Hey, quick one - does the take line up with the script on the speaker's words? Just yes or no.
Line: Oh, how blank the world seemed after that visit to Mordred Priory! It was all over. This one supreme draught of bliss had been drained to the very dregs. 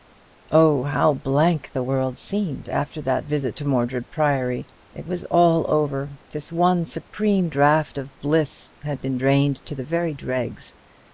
yes